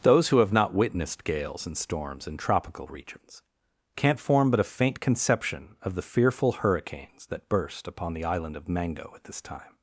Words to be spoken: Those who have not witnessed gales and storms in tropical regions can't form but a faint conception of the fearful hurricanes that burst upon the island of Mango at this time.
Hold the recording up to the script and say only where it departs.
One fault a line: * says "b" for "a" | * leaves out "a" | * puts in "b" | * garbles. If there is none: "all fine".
all fine